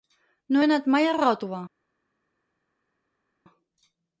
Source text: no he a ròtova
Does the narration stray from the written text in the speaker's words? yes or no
yes